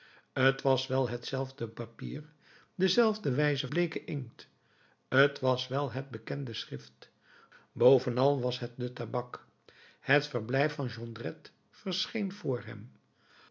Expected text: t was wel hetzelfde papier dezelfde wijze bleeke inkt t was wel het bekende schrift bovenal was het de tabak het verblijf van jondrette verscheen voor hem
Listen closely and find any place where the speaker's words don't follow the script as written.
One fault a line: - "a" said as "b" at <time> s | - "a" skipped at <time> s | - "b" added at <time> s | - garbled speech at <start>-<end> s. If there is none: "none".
none